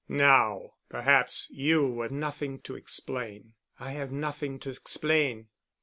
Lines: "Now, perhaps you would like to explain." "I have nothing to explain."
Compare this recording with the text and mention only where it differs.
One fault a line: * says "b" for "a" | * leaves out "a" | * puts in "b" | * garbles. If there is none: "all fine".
* says "nothing" for "like"